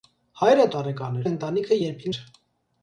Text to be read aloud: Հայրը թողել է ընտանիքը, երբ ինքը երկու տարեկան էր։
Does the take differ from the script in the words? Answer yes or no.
yes